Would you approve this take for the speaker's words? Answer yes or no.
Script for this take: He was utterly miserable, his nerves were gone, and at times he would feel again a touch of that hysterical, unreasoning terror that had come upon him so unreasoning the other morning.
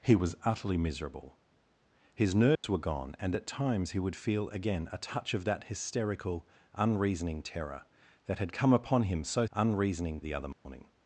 yes